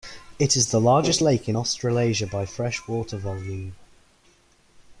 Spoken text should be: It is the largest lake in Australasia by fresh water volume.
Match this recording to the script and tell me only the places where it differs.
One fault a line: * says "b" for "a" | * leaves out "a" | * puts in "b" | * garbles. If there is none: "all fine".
all fine